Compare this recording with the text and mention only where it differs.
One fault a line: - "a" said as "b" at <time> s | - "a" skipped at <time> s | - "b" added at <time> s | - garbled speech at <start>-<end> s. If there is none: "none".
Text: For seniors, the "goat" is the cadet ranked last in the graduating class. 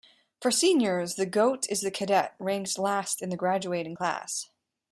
none